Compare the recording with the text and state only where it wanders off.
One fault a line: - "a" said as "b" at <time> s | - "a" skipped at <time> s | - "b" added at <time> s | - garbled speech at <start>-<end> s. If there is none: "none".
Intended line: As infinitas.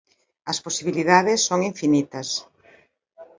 - "posibilidades son" added at 0.7 s